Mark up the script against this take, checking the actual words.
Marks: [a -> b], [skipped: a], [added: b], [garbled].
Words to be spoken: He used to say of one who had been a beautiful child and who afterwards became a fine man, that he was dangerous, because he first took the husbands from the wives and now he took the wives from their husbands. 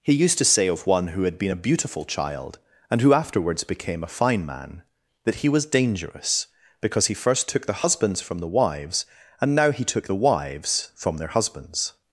He used to say of one who had been a beautiful child and who afterwards became a fine man, that he was dangerous, because he first took the husbands from the wives and now he took the wives from their husbands.